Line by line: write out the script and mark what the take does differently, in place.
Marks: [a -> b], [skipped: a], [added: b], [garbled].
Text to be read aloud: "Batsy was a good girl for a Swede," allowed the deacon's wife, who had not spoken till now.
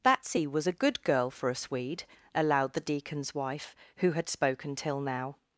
"Batsy was a good girl for a Swede," allowed the deacon's wife, who had [skipped: not] spoken till now.